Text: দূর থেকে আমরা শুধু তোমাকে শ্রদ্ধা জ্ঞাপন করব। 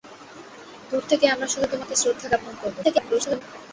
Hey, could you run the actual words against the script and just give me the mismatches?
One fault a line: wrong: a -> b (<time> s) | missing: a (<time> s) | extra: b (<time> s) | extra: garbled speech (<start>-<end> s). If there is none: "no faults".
extra: garbled speech (2.8-3.4 s)